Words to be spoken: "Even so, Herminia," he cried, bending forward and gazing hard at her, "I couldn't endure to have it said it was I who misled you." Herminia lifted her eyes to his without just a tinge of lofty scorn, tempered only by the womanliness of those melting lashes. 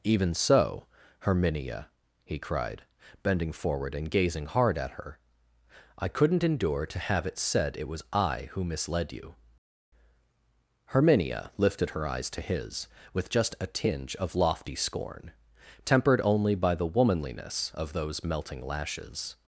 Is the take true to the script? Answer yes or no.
no